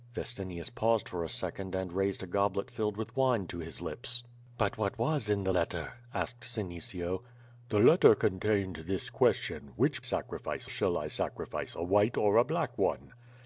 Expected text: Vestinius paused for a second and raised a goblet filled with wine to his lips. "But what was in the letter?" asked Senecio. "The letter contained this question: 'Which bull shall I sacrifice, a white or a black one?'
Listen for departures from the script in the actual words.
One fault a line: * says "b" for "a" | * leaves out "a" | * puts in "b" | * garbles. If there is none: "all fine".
* says "sacrifice" for "bull"